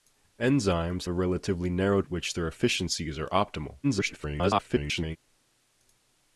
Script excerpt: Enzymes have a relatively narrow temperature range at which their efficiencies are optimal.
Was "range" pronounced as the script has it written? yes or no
no